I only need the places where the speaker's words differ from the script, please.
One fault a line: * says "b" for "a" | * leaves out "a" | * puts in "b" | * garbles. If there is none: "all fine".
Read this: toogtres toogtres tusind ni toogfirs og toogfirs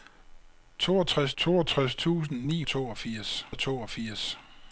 all fine